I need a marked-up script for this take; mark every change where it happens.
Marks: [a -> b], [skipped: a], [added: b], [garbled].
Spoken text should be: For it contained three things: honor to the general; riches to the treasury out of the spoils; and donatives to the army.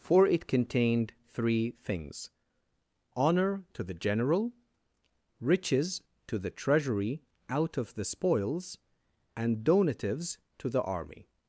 For it contained three things: honor to the general; riches to the treasury out of the spoils; and donatives to the army.